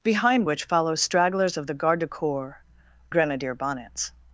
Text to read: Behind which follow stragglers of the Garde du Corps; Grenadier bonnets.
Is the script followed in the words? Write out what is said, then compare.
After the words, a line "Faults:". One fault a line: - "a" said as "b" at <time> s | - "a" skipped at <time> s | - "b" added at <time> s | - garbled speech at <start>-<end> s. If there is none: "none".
Behind which follow stragglers of the Garde du Corps; Grenadier bonnets.
Faults:
none